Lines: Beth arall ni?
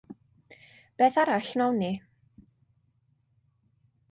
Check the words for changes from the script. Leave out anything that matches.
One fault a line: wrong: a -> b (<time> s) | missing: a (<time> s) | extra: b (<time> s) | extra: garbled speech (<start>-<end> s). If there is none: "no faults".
extra: wnawn (1.6 s)